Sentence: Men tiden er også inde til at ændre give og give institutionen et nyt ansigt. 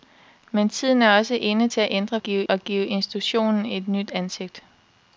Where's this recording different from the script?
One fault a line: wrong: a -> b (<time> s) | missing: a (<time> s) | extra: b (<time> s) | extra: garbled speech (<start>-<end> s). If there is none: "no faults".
no faults